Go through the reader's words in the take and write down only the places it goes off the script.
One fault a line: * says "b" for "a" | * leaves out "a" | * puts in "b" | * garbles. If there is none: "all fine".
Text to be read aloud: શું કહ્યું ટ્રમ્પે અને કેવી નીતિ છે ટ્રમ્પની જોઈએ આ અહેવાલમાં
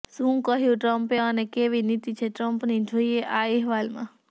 all fine